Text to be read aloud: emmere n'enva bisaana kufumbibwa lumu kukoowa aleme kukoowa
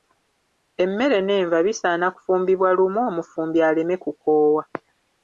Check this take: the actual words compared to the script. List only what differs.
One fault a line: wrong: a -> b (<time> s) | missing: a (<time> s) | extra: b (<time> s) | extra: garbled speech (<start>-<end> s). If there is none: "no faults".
wrong: kukoowa -> omufumbi (3.1 s)